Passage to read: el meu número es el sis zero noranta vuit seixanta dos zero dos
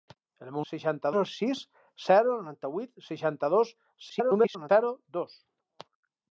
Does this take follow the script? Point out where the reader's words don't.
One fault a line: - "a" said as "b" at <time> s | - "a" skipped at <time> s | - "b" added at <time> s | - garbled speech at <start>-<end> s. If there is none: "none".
- "número" said as "seixanta" at 0.7 s
- garbled speech at 4.1-4.7 s